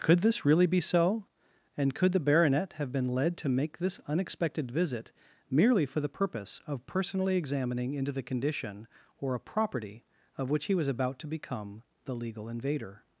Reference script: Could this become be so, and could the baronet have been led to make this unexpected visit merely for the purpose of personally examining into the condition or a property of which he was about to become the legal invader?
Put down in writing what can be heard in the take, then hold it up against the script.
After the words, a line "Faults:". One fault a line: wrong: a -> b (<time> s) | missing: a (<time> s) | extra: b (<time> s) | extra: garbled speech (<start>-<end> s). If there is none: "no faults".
Could this really be so, and could the baronet have been led to make this unexpected visit merely for the purpose of personally examining into the condition or a property of which he was about to become the legal invader?
Faults:
wrong: become -> really (0.4 s)